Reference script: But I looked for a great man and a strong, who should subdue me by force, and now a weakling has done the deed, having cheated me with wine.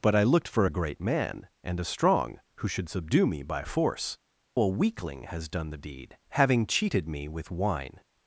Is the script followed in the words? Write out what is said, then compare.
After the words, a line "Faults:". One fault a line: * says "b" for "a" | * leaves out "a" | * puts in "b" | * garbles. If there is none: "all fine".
But I looked for a great man and a strong, who should subdue me by force, a weakling has done the deed, having cheated me with wine.
Faults:
* leaves out "and now"